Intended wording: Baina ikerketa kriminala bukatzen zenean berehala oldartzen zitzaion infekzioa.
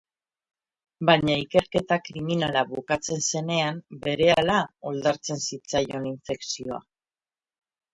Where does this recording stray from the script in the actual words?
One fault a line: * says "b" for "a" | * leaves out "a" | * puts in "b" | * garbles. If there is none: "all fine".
all fine